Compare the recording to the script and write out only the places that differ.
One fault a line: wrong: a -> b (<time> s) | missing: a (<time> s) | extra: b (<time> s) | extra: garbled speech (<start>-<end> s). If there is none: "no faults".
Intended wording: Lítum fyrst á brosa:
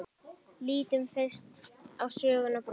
extra: sögnina (2.2 s)